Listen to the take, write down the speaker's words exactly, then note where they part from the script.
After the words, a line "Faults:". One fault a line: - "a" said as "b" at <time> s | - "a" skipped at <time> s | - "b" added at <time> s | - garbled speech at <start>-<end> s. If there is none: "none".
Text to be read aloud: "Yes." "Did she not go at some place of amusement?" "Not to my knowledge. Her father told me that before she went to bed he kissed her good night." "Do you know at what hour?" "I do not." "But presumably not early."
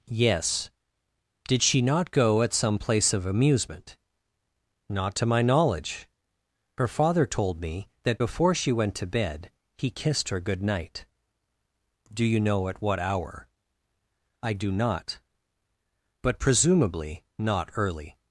"Yes." "Did she not go at some place of amusement?" "Not to my knowledge. Her father told me that before she went to bed he kissed her good night." "Do you know at what hour?" "I do not." "But presumably not early."
Faults:
none